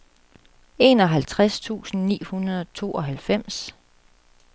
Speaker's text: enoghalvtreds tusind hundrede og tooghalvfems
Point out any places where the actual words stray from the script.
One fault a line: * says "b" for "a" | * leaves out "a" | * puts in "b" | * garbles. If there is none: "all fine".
* puts in "ni"